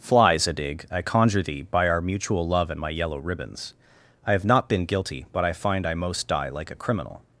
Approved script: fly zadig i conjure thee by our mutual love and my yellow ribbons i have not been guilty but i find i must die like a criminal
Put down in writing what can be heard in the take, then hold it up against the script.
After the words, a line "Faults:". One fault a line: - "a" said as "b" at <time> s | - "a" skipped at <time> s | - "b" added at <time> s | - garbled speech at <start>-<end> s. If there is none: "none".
fly zadig i conjure thee by our mutual love and my yellow ribbons i have not been guilty but i find i most die like a criminal
Faults:
- "must" said as "most" at 5.9 s